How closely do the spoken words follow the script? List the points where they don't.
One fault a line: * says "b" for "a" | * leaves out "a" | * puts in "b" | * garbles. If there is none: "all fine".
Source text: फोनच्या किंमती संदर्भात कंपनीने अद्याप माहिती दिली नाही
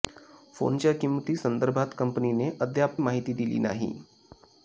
all fine